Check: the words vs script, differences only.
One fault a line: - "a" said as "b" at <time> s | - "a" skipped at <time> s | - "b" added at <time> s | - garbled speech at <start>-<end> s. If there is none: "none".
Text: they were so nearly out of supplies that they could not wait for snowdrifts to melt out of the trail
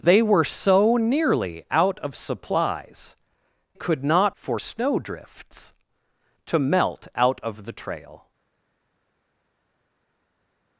- "that they" skipped at 3.1 s
- "wait" skipped at 4.4 s